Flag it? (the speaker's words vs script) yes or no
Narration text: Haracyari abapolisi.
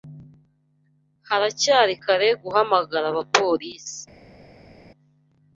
yes